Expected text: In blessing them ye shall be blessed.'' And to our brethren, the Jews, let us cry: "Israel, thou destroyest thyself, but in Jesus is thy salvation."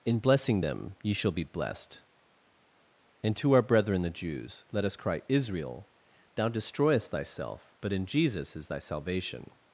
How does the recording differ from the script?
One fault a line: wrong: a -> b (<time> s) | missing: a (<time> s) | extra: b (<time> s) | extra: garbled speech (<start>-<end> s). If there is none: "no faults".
no faults